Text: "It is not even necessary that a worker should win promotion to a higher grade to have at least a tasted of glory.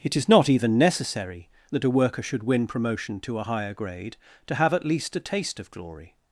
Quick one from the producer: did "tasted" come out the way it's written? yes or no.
no